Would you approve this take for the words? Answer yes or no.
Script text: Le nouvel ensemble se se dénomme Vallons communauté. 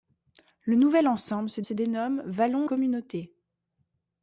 yes